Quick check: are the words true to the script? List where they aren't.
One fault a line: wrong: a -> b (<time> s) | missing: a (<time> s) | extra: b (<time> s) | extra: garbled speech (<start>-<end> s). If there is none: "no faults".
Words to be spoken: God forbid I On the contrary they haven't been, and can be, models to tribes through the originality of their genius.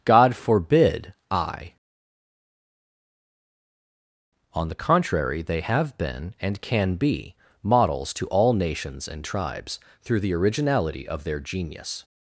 wrong: haven't -> have (5.6 s)
extra: all nations and (8.3 s)